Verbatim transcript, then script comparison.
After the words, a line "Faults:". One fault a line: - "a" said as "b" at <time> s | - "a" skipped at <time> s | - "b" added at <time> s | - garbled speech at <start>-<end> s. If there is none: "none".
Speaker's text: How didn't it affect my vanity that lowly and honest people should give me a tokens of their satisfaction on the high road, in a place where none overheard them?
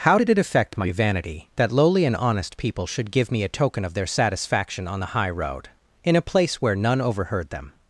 How did it affect my vanity that lowly and honest people should give me a token of their satisfaction on the high road, in a place where none overheard them?
Faults:
- "didn't" said as "did" at 0.1 s
- "tokens" said as "token" at 3.5 s